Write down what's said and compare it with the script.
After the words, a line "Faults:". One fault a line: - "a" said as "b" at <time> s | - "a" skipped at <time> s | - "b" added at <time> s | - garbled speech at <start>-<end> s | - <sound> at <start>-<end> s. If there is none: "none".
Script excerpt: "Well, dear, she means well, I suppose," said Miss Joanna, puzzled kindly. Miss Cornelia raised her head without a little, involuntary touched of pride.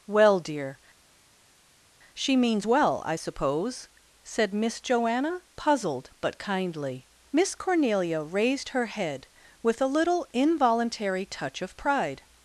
"Well, dear, she means well, I suppose," said Miss Joanna, puzzled but kindly. Miss Cornelia raised her head with a little, involuntary touch of pride.
Faults:
- "but" added at 6.2 s
- "without" said as "with" at 9.6 s
- "touched" said as "touch" at 11.2 s